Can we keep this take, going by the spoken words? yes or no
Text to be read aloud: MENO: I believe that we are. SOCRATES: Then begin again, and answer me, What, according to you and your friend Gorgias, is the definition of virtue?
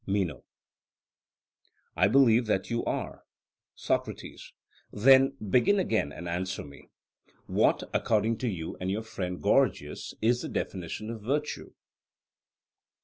no